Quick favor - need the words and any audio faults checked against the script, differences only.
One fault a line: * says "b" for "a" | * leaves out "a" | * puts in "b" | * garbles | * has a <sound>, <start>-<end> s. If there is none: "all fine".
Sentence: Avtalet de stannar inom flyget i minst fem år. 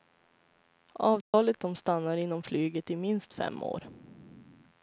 * has a dropout, 1.2-1.3 s